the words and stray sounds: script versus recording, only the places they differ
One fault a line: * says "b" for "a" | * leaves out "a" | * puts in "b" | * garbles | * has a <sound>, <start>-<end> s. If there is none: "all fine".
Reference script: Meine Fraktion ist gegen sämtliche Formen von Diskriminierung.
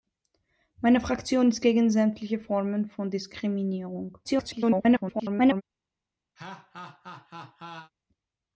* garbles
* has a laugh, 6.4-7.9 s